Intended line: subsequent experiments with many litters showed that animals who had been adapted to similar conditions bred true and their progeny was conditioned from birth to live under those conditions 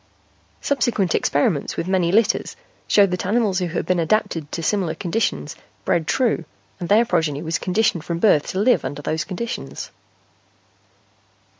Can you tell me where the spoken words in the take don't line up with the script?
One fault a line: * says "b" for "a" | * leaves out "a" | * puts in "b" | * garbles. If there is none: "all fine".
all fine